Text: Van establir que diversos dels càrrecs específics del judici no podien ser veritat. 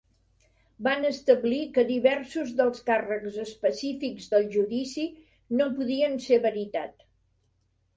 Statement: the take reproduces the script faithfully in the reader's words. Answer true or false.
true